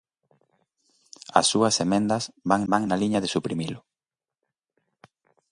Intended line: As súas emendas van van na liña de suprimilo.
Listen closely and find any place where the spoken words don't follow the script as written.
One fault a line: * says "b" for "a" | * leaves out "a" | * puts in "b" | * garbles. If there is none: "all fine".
all fine